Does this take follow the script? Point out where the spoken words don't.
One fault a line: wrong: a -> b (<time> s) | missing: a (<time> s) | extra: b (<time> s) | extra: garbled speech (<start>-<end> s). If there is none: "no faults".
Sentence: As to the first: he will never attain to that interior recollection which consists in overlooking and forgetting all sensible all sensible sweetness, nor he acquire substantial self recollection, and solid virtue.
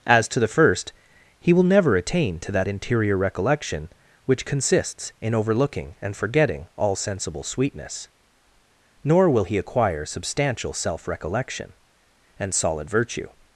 missing: all sensible (7.4 s)
extra: will (9.3 s)